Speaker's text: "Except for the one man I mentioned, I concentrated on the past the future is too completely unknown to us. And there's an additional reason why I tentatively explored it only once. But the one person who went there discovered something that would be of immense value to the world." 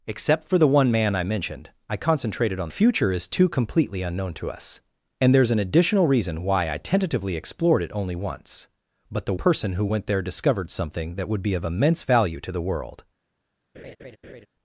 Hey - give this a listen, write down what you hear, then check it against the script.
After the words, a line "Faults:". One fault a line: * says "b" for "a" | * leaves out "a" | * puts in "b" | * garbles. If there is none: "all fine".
"Except for the one man I mentioned, I concentrated on future is too completely unknown to us. And there's an additional reason why I tentatively explored it only once. But the person who went there discovered something that would be of immense value to the world."
Faults:
* leaves out "the past the"
* leaves out "one"